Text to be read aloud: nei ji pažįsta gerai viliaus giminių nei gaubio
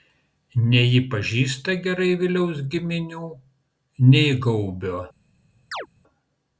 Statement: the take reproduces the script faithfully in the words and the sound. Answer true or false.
false